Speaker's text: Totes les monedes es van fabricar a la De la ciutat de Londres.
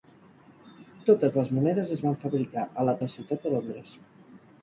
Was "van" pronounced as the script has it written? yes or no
yes